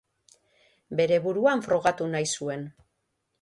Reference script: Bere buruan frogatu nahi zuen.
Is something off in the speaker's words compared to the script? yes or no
no